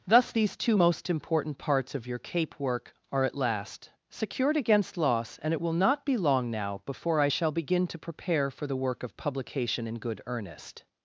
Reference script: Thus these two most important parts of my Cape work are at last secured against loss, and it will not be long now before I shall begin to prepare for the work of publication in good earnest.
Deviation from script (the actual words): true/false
true